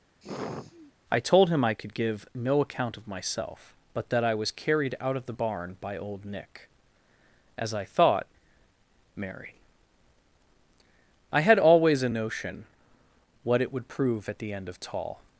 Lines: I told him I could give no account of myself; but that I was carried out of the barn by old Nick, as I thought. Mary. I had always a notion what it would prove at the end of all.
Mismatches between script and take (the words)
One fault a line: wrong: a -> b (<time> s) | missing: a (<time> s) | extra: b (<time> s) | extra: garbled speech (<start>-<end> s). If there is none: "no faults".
wrong: all -> tall (14.8 s)